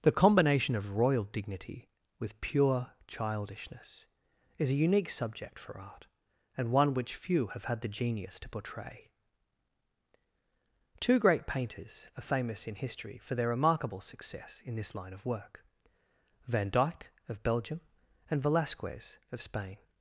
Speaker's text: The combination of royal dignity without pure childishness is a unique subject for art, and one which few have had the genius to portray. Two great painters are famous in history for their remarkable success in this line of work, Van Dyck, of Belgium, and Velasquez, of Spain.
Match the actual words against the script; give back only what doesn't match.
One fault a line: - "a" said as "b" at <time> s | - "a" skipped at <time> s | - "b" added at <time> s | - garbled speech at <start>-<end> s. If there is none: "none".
- "without" said as "with" at 2.2 s